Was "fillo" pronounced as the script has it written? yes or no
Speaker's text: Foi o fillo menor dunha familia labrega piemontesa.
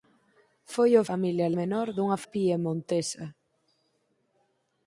no